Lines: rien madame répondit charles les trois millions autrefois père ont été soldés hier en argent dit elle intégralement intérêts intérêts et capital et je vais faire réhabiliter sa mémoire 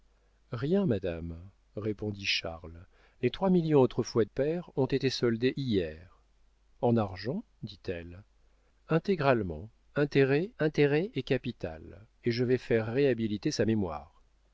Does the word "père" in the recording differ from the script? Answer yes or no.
no